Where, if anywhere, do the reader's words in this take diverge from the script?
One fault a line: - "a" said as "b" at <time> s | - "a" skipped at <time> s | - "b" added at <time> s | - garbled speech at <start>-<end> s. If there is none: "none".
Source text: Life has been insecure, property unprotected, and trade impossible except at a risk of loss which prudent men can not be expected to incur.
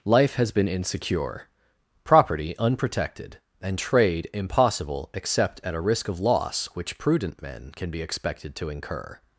- "not" skipped at 7.9 s